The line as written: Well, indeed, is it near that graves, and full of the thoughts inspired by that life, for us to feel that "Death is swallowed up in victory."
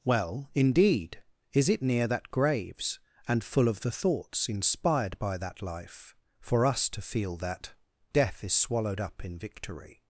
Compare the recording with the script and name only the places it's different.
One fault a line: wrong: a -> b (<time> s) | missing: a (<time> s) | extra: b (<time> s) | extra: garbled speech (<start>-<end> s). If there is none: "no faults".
no faults